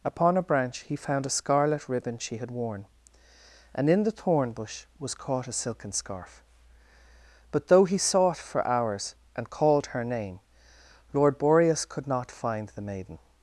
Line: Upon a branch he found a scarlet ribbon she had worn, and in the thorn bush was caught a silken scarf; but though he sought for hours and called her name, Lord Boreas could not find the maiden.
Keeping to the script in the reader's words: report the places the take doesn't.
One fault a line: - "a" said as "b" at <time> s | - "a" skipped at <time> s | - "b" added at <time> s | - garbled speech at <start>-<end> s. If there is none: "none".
none